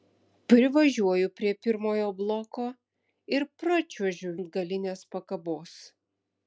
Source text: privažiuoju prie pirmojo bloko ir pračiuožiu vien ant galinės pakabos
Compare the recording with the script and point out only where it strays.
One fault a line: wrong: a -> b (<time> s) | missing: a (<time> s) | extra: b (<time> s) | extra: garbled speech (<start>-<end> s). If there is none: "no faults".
missing: vien (4.3 s)